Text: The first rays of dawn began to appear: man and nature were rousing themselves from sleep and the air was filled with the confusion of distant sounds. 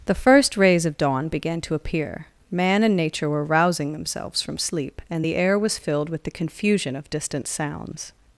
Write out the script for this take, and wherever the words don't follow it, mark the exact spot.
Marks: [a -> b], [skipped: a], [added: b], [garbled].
The first rays of dawn began to appear: man and nature were rousing themselves from sleep and the air was filled with the confusion of distant sounds.